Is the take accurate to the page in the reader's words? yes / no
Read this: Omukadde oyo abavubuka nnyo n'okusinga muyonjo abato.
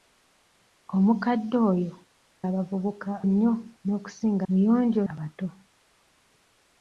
yes